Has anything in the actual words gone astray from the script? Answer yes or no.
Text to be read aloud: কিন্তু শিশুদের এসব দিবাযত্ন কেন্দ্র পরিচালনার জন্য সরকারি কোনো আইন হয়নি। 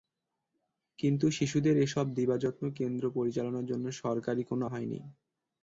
yes